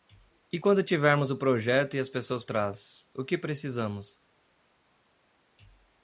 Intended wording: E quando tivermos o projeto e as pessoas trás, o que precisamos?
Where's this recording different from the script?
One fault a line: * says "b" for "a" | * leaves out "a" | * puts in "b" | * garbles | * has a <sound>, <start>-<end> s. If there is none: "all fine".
all fine